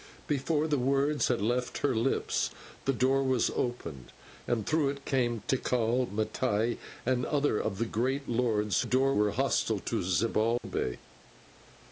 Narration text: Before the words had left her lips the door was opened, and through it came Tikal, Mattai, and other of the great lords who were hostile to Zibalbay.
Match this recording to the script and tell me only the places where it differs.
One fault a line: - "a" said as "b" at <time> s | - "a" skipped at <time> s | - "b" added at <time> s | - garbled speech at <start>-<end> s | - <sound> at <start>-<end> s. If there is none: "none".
- "who" said as "door" at 8.8 s
- dropout at 10.6-10.6 s